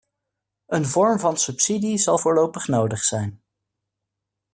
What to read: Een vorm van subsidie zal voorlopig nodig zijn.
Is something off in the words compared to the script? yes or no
no